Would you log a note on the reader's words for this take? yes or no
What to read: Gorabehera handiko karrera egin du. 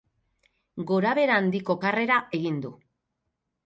no